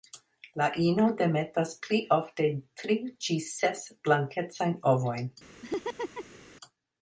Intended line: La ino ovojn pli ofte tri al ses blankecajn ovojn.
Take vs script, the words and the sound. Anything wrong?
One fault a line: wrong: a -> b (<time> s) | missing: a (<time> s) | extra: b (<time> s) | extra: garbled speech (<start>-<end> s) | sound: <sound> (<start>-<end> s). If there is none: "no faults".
wrong: ovojn -> demetas (1.2 s)
wrong: al -> ĝis (3.3 s)
sound: laugh (5.6-6.4 s)